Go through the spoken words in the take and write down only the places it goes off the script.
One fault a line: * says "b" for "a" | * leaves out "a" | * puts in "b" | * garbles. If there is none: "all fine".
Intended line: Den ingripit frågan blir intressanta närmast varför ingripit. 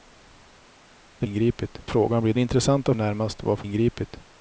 all fine